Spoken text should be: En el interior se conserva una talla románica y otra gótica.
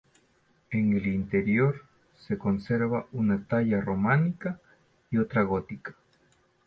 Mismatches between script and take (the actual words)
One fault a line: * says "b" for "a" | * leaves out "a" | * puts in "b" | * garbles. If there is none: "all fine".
all fine